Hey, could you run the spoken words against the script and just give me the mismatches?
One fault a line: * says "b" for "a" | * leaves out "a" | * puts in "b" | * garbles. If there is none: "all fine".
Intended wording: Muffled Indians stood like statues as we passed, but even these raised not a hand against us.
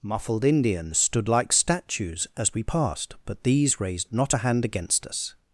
* leaves out "even"